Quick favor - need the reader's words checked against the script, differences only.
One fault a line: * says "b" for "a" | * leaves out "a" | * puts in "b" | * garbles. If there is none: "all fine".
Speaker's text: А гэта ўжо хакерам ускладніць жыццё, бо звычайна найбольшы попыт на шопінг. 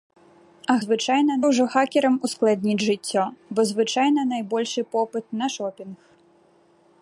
* says "звычайна" for "гэта"